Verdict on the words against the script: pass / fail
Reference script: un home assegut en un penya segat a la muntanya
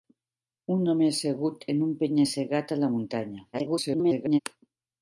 fail